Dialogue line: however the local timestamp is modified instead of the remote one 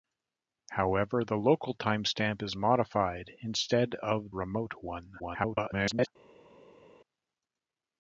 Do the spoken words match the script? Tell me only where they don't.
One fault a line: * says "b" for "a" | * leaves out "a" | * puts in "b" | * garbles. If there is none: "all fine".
* leaves out "the"
* garbles